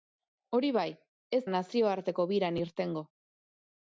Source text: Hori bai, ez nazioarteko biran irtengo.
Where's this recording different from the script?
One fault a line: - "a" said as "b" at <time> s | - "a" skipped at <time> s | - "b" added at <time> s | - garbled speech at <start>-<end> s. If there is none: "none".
none